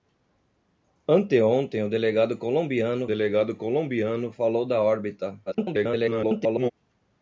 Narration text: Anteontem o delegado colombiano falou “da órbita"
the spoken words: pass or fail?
fail